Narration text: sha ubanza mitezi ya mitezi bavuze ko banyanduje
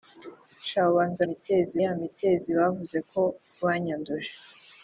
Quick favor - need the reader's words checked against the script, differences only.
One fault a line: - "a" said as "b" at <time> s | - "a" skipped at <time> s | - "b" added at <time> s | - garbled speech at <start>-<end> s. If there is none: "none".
none